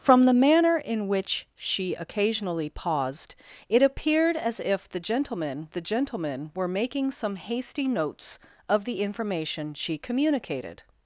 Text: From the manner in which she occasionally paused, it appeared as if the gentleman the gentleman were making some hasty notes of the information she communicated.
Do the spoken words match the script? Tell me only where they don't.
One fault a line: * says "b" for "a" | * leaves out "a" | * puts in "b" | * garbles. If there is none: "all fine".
all fine